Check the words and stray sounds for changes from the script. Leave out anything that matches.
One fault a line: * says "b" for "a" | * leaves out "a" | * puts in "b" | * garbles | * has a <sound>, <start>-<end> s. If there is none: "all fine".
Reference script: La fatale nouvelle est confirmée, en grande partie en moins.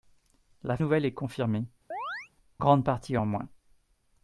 * leaves out "fatale"
* leaves out "en"
* has a chirp, 1.9-2.3 s